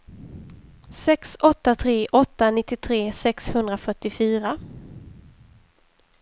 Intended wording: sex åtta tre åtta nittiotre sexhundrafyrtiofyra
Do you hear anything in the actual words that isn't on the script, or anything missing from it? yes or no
no